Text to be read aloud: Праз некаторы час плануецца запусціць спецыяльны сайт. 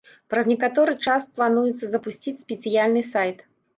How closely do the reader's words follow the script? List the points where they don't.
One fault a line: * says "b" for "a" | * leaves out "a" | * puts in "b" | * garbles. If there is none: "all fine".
all fine